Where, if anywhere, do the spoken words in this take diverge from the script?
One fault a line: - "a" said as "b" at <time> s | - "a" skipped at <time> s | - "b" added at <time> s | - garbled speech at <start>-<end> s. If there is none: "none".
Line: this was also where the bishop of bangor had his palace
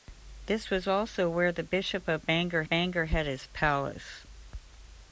- "bangor" added at 2.7 s